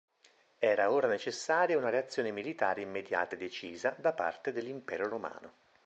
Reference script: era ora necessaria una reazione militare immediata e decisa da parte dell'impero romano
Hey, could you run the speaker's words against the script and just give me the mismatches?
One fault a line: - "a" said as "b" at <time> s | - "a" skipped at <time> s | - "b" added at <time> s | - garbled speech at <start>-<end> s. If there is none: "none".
none